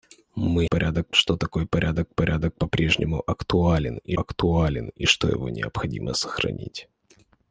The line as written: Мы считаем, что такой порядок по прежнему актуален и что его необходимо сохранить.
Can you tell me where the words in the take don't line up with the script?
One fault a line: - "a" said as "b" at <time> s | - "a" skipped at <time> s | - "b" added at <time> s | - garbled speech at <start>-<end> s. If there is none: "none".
- "считаем" said as "порядок" at 0.6 s
- "порядок" added at 2.1 s
- "актуален и" added at 4.1 s